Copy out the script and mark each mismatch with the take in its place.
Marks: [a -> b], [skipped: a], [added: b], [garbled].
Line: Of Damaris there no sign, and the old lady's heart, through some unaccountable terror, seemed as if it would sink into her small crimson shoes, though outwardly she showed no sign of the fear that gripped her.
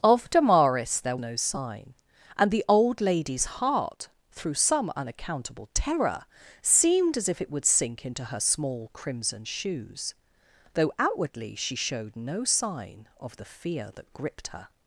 Of Damaris there no sign, and the old lady's heart, through some unaccountable terror, seemed as if it would sink into her small crimson shoes, though outwardly she showed no sign of the fear that gripped her.